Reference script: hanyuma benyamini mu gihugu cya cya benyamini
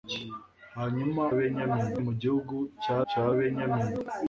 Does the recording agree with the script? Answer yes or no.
yes